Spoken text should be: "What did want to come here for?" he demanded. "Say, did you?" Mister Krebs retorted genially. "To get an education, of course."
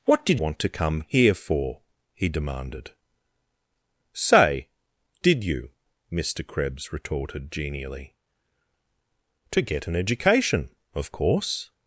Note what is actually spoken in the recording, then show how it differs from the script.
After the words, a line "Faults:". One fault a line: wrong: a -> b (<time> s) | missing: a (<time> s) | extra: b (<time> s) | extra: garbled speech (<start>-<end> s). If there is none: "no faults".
"What did want to come here for?" he demanded. "Say, did you?" Mister Krebs retorted genially. "To get an education, of course."
Faults:
no faults